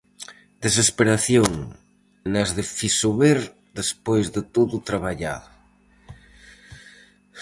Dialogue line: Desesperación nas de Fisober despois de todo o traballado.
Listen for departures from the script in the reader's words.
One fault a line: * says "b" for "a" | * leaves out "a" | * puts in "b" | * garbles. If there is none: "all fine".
all fine